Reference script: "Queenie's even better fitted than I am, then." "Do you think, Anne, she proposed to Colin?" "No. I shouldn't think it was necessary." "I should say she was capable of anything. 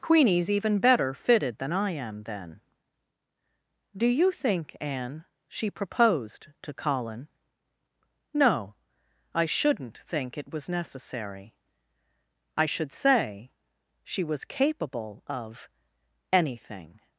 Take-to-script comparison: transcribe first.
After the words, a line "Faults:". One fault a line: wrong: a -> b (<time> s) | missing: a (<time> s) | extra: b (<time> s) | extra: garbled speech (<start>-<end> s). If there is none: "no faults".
"Queenie's even better fitted than I am, then." "Do you think, Anne, she proposed to Colin?" "No. I shouldn't think it was necessary." "I should say she was capable of anything.
Faults:
no faults